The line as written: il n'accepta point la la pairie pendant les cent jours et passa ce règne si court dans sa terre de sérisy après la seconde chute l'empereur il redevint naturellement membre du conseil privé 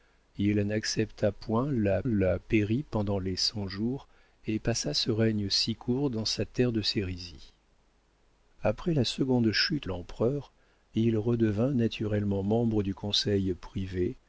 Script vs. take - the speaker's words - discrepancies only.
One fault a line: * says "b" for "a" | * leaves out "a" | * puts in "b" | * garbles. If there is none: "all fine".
all fine